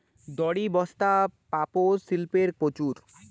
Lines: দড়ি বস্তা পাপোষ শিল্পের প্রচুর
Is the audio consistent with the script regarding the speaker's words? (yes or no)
yes